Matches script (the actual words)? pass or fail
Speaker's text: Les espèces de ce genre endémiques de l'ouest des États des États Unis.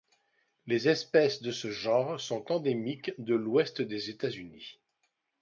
fail